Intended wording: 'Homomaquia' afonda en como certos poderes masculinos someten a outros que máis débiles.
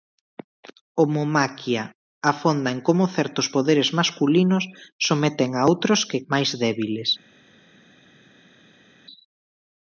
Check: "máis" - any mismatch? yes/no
no